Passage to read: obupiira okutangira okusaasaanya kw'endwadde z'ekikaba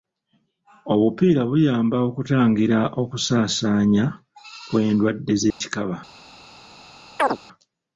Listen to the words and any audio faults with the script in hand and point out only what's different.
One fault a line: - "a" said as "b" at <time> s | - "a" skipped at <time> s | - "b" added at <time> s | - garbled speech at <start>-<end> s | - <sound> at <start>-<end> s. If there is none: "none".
- "buyamba" added at 1.5 s
- dropout at 5.5-5.6 s
- chirp at 7.2-7.4 s